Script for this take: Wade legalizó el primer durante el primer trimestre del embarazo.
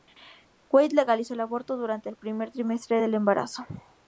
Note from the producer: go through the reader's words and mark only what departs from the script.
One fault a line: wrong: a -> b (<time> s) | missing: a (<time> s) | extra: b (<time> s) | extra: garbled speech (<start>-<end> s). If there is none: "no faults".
wrong: primer -> aborto (1.4 s)